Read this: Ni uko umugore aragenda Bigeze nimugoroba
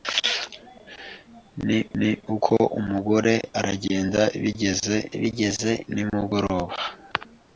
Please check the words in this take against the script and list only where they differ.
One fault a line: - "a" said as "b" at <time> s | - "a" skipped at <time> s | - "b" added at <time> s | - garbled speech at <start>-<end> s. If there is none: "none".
- "ni" added at 2.0 s
- "Bigeze" added at 5.2 s